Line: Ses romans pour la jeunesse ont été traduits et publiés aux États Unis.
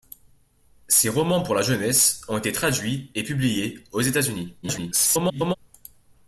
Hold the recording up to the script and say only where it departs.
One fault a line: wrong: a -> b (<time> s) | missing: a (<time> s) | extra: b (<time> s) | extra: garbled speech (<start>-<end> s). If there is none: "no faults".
extra: garbled speech (4.6-5.6 s)